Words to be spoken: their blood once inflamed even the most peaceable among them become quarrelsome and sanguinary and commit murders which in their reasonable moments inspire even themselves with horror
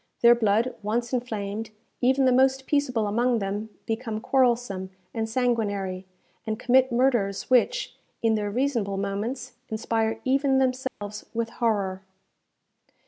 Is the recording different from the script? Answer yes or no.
no